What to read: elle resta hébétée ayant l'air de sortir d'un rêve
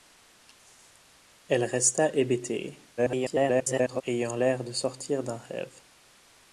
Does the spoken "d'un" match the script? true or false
true